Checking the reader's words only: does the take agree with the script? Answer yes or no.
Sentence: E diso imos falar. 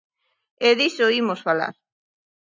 yes